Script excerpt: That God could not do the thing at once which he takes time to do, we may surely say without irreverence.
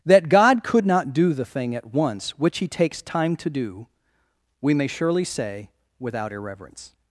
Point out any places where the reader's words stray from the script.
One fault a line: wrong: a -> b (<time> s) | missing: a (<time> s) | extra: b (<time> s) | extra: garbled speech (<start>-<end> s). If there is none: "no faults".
no faults